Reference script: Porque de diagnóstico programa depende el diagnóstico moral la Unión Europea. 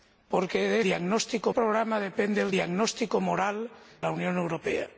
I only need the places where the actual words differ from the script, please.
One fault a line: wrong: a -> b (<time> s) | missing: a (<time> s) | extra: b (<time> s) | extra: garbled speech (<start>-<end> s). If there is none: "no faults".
no faults